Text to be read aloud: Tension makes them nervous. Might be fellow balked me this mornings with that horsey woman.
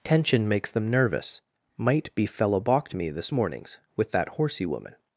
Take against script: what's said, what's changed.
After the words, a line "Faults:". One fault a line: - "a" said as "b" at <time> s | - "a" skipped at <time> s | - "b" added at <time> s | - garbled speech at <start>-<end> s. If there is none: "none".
Tension makes them nervous. Might be fellow balked me this mornings with that horsey woman.
Faults:
none